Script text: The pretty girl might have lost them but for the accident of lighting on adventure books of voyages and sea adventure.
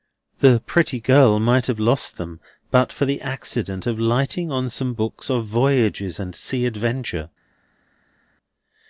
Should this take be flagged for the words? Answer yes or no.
yes